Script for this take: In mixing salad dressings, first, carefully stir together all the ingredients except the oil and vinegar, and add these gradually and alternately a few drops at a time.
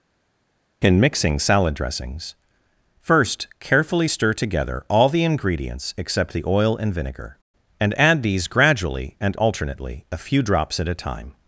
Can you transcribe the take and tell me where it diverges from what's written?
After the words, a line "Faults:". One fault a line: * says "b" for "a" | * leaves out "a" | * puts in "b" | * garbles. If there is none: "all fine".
In mixing salad dressings, first, carefully stir together all the ingredients except the oil and vinegar, and add these gradually and alternately a few drops at a time.
Faults:
all fine